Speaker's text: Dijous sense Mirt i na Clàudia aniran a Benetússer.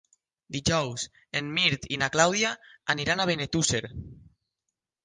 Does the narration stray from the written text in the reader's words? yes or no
yes